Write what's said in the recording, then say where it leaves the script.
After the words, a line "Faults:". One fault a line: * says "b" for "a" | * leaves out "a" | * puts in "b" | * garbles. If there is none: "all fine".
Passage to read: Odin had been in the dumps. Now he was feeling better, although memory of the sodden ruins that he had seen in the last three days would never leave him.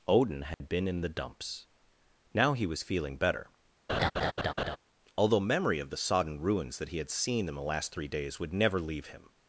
Odin had been in the dumps. Now he was feeling better, although memory of the sodden ruins that he had seen in the last three days would never leave him.
Faults:
all fine